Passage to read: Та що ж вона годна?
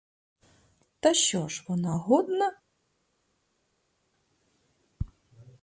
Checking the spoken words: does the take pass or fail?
pass